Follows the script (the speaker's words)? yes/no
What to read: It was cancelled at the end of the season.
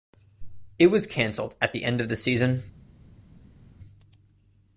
yes